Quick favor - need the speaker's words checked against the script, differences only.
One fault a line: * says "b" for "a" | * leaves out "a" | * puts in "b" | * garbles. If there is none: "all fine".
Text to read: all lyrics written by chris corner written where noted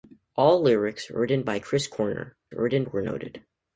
all fine